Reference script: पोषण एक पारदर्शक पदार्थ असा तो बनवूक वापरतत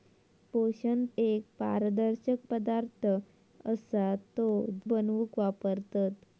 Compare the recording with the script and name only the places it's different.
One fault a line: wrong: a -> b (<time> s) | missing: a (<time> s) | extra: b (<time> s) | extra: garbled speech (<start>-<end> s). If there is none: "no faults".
no faults